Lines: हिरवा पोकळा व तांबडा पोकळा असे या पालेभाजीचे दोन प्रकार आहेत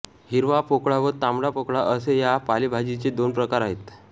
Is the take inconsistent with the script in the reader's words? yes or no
no